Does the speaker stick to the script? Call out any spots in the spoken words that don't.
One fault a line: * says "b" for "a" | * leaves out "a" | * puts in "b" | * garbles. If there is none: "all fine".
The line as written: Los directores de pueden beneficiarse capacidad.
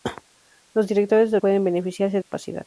all fine